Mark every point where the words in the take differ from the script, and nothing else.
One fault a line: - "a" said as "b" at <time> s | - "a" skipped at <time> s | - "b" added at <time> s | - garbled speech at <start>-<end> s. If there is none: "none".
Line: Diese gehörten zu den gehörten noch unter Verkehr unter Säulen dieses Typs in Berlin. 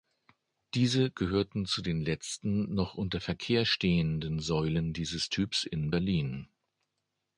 - "gehörten" said as "letzten" at 2.0 s
- "unter" said as "stehenden" at 3.6 s